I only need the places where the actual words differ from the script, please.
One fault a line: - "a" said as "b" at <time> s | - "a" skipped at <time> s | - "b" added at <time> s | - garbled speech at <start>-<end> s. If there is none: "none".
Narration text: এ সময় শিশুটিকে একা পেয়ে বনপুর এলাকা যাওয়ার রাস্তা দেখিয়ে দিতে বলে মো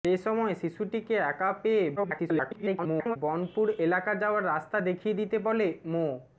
- garbled speech at 2.0-3.2 s